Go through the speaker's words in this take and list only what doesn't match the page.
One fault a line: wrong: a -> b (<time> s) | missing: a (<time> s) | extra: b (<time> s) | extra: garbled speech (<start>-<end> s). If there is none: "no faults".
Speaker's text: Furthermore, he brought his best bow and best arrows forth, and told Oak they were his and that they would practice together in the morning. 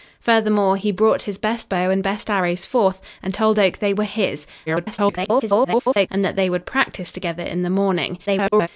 extra: garbled speech (4.7-6.1 s)
extra: garbled speech (8.3-8.7 s)